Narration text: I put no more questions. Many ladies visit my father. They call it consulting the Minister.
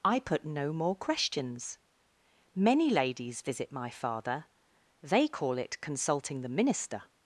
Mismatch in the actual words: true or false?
false